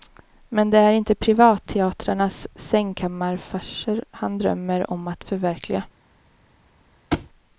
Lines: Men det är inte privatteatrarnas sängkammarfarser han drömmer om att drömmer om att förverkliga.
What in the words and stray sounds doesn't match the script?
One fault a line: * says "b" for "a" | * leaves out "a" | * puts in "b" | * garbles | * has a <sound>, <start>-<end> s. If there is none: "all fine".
* leaves out "drömmer om att"
* has a thud, 7.1-7.3 s